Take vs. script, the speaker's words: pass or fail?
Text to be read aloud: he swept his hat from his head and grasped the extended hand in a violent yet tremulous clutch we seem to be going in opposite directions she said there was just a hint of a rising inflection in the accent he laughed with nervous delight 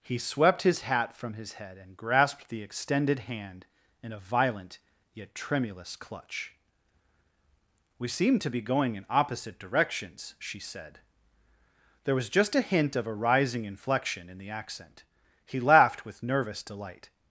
pass